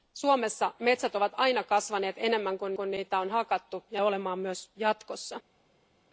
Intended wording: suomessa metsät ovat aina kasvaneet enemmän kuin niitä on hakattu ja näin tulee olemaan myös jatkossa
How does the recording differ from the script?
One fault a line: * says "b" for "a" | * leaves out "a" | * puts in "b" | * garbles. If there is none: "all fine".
* puts in "kuin"
* leaves out "näin tulee"